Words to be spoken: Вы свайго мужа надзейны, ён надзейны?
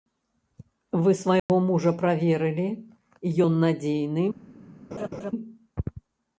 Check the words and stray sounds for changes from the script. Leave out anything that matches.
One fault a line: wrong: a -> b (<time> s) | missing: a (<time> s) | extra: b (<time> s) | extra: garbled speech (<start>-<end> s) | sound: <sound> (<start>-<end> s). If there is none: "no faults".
sound: dropout (1.4-1.5 s)
wrong: надзейны -> праверылі (2.0 s)
sound: laugh (4.9-5.3 s)